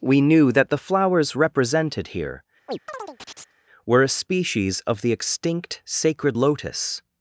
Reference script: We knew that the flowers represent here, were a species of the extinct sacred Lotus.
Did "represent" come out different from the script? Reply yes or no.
yes